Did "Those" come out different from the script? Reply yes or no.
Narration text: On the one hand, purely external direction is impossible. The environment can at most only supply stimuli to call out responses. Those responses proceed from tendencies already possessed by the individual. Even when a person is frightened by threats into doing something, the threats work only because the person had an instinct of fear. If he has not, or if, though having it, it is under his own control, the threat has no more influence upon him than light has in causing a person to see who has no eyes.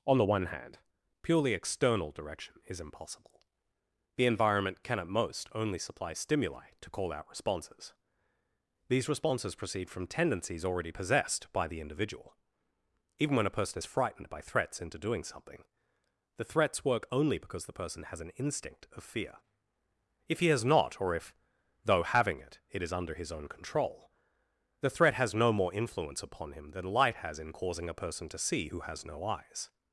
yes